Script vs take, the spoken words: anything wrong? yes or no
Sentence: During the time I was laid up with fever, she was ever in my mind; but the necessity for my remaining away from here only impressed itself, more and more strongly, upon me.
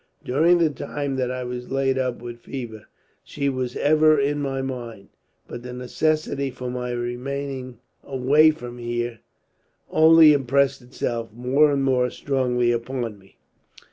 yes